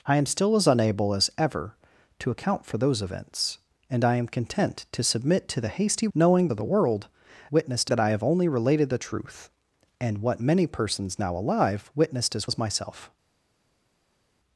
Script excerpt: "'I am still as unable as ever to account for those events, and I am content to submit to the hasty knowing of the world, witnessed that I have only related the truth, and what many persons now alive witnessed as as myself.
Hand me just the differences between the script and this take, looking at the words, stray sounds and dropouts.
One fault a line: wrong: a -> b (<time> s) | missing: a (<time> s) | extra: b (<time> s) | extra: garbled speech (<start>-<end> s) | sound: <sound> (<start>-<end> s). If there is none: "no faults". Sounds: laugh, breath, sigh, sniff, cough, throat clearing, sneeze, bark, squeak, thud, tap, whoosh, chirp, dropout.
no faults